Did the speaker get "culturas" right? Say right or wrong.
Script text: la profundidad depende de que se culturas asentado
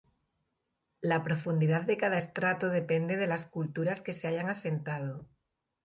wrong